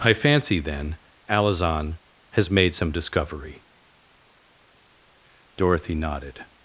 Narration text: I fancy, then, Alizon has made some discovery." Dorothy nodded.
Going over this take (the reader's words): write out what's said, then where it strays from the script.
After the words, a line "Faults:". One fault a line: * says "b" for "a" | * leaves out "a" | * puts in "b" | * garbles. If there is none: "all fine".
I fancy, then, Alizon has made some discovery." Dorothy nodded.
Faults:
all fine